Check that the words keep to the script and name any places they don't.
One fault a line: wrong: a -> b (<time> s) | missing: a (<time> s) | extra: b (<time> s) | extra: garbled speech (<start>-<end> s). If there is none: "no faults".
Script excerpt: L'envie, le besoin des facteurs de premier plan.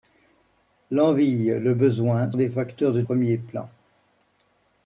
no faults